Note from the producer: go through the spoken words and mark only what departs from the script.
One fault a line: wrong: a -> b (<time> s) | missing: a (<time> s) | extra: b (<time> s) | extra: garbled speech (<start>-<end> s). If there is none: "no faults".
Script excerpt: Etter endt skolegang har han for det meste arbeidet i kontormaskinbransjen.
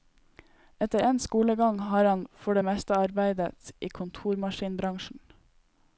no faults